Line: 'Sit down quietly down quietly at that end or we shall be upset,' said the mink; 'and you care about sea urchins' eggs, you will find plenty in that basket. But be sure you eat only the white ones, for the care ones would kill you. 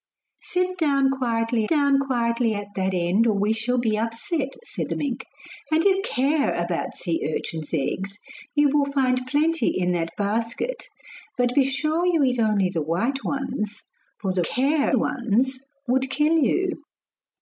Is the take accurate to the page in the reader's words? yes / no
yes